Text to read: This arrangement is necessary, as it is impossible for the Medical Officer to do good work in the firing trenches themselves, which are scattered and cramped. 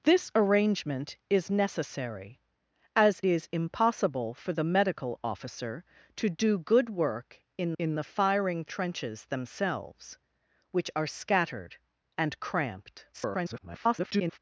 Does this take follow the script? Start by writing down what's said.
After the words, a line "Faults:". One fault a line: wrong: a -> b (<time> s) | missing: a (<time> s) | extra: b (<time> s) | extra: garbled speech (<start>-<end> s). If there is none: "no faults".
This arrangement is necessary, as is impossible for the Medical Officer to do good work in in the firing trenches themselves, which are scattered and cramped. [garbled]
Faults:
missing: it (3.2 s)
extra: in (7.8 s)
extra: garbled speech (13.1-14.4 s)